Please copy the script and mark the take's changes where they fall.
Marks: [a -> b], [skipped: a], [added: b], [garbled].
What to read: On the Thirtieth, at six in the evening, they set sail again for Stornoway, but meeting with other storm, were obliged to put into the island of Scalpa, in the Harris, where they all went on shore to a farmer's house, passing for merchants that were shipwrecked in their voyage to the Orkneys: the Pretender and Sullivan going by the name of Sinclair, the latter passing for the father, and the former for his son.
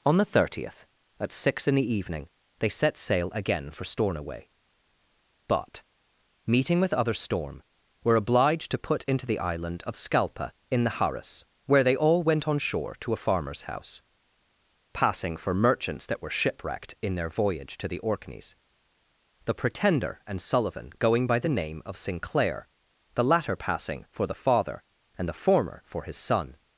On the Thirtieth, at six in the evening, they set sail again for Stornoway, but meeting with other storm, were obliged to put into the island of Scalpa, in the Harris, where they all went on shore to a farmer's house, passing for merchants that were shipwrecked in their voyage to the Orkneys: the Pretender and Sullivan going by the name of Sinclair, the latter passing for the father, and the former for his son.